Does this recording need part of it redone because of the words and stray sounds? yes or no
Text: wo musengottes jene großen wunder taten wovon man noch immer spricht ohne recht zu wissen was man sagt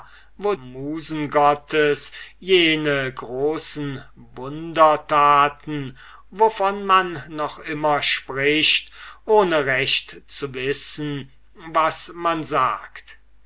no